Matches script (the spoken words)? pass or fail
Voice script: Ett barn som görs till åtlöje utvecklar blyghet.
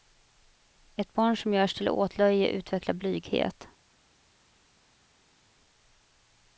pass